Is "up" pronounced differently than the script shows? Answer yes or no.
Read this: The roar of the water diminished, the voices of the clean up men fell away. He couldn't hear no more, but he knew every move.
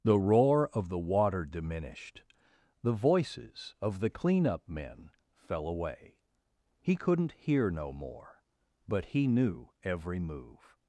no